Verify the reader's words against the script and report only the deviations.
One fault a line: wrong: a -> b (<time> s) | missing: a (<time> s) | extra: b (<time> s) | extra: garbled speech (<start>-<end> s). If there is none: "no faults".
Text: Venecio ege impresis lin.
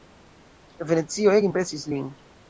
no faults